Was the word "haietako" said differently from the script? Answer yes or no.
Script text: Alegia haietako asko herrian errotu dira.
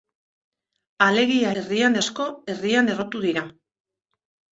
yes